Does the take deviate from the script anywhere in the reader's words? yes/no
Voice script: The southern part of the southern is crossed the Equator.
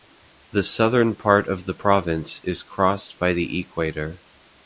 yes